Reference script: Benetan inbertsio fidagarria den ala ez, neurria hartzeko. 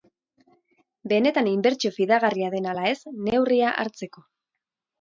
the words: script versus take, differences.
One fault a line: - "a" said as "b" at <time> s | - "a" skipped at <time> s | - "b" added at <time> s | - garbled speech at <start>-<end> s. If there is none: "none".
none